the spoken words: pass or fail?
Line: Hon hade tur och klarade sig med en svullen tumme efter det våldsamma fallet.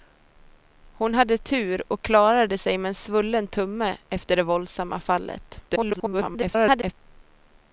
fail